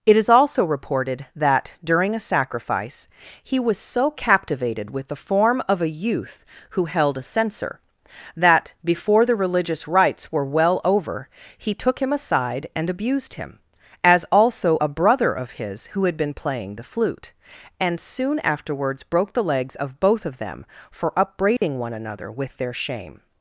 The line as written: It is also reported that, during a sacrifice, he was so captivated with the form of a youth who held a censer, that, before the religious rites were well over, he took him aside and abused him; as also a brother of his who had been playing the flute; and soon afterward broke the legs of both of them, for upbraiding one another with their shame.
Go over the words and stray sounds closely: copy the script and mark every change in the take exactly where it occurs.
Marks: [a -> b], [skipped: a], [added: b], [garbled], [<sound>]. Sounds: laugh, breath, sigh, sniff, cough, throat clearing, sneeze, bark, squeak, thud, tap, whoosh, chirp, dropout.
It is also reported that, during a sacrifice, he was so captivated with the form of a youth who held a censer, that, before the religious rites were well over, he took him aside and abused him; as also a brother of his who had been playing the flute; and soon [afterward -> afterwards] broke the legs of both of them, for upbraiding [dropout] one another with their shame.